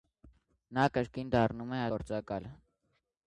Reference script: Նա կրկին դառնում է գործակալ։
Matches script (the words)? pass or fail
pass